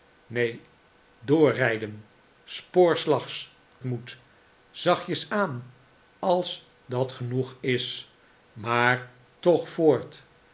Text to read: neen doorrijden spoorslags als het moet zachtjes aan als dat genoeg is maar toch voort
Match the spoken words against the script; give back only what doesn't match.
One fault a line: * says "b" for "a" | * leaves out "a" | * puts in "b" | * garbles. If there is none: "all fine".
* leaves out "als het"